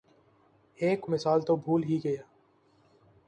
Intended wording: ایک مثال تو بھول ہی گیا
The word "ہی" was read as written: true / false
true